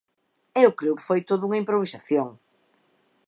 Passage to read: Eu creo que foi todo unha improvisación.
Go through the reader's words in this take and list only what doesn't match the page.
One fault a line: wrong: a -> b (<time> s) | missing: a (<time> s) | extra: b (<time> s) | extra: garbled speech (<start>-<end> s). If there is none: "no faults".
no faults